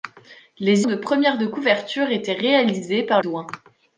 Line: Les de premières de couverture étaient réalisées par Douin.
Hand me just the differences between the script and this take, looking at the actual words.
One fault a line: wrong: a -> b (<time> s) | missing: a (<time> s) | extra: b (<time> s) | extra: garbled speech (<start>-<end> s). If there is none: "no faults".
no faults